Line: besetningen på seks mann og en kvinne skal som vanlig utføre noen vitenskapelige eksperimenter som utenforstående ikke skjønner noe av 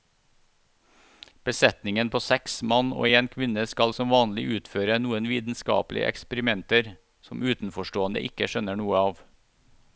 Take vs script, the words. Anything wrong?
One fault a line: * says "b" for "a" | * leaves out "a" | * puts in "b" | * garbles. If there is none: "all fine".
all fine